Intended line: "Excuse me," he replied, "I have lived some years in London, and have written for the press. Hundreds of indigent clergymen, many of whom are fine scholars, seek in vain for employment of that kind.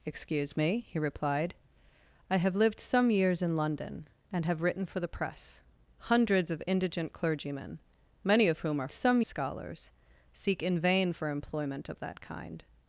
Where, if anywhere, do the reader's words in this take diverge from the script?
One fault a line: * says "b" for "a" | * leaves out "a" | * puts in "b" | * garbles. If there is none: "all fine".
* says "some" for "fine"